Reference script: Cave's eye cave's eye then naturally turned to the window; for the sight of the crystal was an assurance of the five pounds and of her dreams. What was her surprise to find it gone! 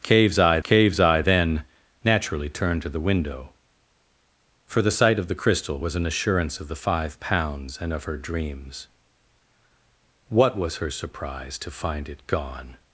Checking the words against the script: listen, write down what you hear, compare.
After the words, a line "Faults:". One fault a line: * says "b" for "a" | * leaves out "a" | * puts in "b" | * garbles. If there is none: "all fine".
Cave's eye cave's eye then naturally turned to the window; for the sight of the crystal was an assurance of the five pounds and of her dreams. What was her surprise to find it gone!
Faults:
all fine